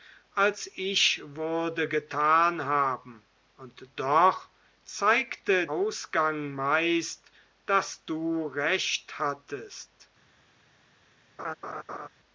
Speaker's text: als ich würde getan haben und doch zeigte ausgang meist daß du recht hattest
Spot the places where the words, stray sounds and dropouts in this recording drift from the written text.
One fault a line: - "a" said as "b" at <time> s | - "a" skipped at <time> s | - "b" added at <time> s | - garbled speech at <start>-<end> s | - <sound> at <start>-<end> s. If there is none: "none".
- laugh at 11.4-12.1 s